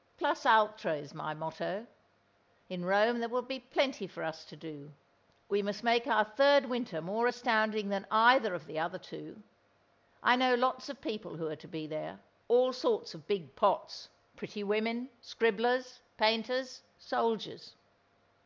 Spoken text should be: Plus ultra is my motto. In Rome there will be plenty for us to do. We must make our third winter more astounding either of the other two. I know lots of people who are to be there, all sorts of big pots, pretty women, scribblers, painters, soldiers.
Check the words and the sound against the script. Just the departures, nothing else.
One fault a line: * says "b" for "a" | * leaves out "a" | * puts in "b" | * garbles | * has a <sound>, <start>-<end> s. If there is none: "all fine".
* puts in "than"